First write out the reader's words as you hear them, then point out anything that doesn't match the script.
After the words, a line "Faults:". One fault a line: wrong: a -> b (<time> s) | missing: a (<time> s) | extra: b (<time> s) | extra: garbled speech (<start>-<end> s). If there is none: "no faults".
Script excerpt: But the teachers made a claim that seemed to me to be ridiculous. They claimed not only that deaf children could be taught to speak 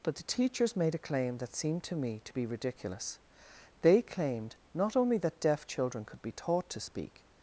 But the teachers made a claim that seemed to me to be ridiculous. They claimed not only that deaf children could be taught to speak
Faults:
no faults